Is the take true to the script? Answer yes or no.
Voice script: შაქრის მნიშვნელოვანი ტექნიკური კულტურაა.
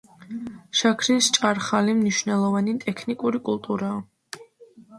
no